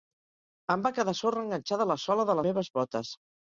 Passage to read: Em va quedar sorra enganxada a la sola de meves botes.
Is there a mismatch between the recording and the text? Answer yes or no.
no